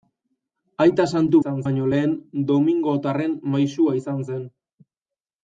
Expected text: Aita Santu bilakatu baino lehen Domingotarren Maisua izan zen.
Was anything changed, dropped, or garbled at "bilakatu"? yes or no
yes